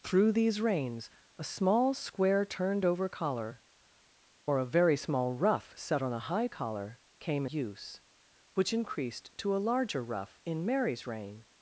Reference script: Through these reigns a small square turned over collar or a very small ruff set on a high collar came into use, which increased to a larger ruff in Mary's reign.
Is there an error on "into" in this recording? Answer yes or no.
yes